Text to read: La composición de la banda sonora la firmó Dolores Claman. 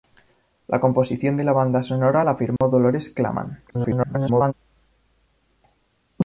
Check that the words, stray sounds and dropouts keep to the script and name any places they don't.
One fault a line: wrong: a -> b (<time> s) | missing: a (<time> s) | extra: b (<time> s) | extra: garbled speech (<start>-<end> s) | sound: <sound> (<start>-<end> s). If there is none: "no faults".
sound: dropout (2.6-2.6 s)
extra: garbled speech (3.7-4.5 s)